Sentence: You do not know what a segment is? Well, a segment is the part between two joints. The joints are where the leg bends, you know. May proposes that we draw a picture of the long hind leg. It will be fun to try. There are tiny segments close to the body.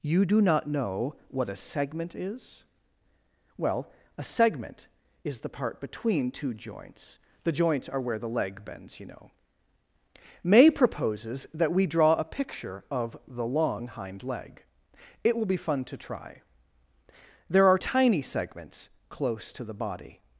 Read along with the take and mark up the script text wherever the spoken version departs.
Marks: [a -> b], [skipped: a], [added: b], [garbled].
You do not know what a segment is? Well, a segment is the part between two joints. The joints are where the leg bends, you know. May proposes that we draw a picture of the long hind leg. It will be fun to try. There are tiny segments close to the body.